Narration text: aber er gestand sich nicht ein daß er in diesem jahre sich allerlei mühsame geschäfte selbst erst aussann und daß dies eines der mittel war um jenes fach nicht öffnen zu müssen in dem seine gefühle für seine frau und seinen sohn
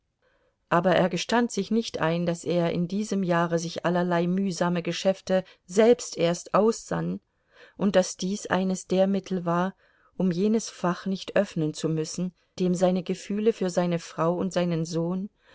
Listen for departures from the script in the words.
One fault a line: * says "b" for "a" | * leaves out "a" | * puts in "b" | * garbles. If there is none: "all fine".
* leaves out "in"